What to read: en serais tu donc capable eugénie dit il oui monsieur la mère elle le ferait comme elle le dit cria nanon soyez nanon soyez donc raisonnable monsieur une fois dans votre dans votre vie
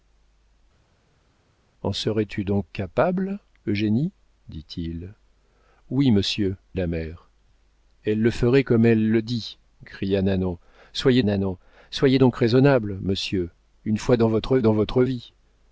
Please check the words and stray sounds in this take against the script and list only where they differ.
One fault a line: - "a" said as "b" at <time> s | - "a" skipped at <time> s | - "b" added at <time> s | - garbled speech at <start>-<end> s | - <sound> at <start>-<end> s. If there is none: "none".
none